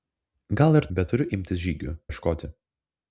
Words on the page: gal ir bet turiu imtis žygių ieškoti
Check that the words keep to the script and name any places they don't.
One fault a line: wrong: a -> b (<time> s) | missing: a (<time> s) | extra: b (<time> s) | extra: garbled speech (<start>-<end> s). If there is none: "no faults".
no faults